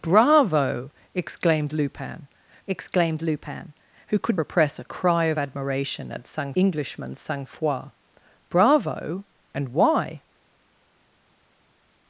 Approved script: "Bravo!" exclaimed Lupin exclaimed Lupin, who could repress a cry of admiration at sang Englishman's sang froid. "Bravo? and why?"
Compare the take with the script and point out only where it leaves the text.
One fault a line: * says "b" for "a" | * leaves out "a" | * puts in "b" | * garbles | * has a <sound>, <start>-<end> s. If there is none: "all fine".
all fine